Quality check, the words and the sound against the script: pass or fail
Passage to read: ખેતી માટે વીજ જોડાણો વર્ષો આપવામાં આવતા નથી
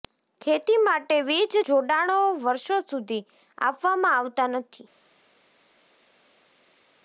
fail